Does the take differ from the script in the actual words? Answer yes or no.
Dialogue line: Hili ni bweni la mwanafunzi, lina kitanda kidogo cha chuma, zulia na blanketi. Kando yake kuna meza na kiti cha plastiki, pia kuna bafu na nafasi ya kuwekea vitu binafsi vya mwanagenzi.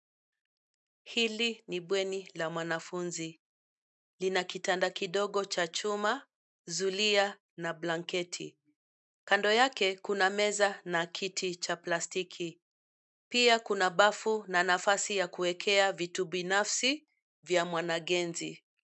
no